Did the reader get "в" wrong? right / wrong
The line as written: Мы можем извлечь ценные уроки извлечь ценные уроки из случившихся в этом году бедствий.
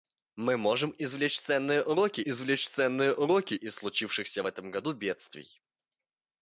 right